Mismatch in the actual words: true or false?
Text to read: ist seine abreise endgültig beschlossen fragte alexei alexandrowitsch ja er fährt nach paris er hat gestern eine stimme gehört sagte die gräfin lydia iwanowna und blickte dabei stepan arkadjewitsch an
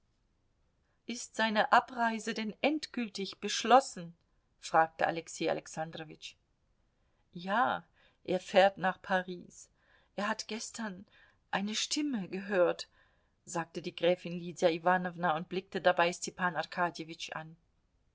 true